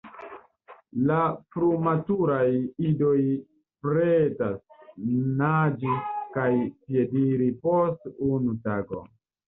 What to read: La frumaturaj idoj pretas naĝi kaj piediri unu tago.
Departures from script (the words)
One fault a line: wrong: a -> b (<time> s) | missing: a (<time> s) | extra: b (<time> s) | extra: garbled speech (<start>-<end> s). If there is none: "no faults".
extra: post (7.7 s)